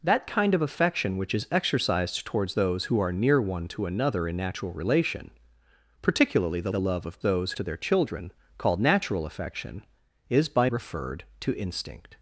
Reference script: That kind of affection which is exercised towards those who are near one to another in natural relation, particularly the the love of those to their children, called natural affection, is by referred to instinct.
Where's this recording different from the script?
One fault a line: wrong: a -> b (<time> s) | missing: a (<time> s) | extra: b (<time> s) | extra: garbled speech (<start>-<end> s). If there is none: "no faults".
no faults